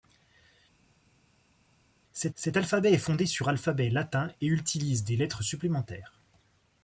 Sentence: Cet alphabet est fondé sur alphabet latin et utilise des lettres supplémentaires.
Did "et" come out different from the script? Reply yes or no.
no